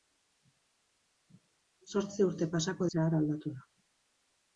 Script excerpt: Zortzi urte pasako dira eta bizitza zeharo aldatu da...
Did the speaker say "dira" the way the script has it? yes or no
no